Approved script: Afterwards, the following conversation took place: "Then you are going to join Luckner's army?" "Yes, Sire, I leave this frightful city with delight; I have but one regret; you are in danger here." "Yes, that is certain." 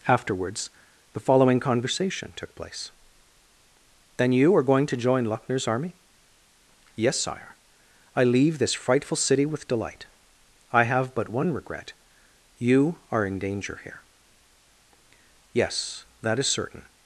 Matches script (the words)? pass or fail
pass